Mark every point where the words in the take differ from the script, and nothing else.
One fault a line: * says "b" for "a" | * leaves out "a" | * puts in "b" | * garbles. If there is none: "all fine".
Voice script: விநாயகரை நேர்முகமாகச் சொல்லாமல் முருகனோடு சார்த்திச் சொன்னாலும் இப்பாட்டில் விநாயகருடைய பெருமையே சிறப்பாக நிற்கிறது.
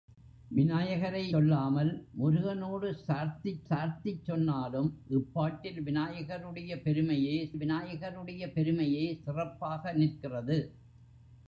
* leaves out "நேர்முகமாகச்"
* puts in "சார்த்திச்"
* puts in "விநாயகருடைய பெருமையே"